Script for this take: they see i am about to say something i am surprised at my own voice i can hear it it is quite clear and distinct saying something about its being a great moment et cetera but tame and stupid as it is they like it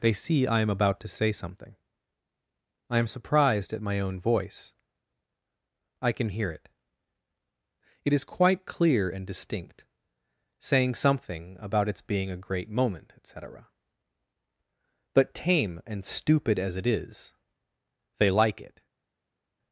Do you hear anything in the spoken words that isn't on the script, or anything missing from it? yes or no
no